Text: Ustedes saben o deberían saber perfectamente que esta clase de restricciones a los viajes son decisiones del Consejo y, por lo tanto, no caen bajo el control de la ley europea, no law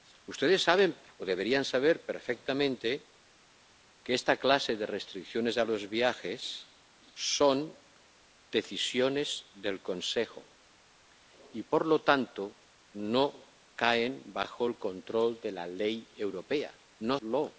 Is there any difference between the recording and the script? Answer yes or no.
no